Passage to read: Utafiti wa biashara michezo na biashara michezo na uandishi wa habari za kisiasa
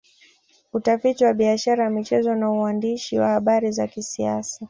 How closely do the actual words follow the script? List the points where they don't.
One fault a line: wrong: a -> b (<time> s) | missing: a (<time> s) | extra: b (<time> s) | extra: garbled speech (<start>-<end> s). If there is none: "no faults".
missing: biashara michezo na (2.5 s)